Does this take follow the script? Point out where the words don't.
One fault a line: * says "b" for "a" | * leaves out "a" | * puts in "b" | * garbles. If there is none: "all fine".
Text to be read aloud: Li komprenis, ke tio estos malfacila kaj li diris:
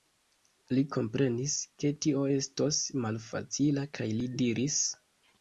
all fine